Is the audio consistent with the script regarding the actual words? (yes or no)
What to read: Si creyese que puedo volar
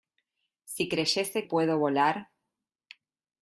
no